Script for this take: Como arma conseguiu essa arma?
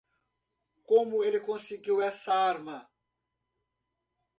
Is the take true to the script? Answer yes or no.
no